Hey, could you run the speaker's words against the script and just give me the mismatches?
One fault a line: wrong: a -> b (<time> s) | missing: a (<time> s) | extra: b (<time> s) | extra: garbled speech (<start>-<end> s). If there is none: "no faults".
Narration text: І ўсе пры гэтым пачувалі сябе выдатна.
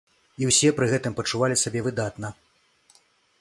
no faults